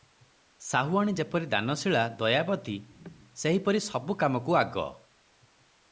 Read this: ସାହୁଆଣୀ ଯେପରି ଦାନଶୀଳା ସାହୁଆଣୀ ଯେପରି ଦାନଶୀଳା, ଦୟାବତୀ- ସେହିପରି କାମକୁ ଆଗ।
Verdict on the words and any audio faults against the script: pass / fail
fail